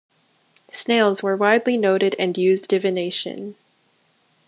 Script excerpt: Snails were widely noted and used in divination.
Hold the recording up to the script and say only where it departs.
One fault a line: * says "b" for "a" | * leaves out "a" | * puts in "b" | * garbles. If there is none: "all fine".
* leaves out "in"